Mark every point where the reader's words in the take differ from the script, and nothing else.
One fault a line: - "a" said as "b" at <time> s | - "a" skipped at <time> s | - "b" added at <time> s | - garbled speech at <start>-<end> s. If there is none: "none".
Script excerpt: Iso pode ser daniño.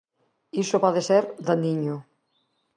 none